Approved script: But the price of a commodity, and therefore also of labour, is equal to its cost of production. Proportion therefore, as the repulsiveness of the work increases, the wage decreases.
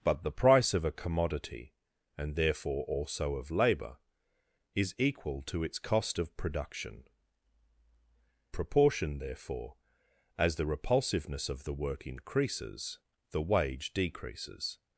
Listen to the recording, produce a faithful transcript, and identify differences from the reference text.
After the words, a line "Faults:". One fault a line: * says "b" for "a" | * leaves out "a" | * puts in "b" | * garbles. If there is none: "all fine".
But the price of a commodity, and therefore also of labour, is equal to its cost of production. Proportion therefore, as the repulsiveness of the work increases, the wage decreases.
Faults:
all fine